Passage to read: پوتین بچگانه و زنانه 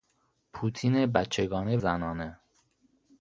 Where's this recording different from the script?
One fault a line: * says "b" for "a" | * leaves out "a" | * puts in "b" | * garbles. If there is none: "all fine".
* leaves out "و"